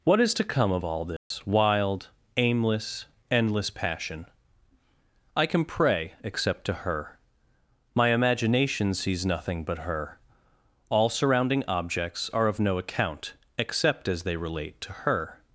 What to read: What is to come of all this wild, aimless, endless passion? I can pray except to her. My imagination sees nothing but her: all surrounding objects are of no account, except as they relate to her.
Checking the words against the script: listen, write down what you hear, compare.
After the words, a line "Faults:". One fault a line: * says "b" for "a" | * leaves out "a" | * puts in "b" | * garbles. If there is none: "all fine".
What is to come of all this wild, aimless, endless passion? I can pray except to her. My imagination sees nothing but her: all surrounding objects are of no account, except as they relate to her.
Faults:
all fine